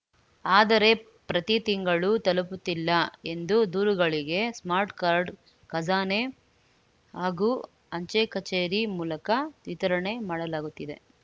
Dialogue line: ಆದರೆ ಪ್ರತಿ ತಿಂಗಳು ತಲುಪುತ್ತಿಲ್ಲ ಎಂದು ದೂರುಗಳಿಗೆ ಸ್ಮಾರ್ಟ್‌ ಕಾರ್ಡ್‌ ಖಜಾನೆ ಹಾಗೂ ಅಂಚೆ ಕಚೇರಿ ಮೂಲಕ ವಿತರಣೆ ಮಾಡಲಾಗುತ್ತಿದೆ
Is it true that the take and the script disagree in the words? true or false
false